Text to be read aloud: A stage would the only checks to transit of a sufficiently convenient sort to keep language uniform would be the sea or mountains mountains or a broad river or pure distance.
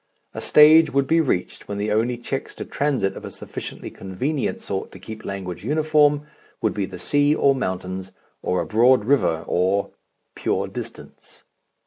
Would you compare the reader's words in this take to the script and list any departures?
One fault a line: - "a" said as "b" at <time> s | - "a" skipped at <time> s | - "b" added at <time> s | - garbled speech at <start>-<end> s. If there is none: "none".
- "be reached when" added at 1.1 s
- "mountains" skipped at 8.1 s